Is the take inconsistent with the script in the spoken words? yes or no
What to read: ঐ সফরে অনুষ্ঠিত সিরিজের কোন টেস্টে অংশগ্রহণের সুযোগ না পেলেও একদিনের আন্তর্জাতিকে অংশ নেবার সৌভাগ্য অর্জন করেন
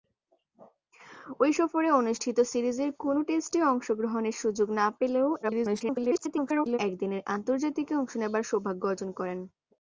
yes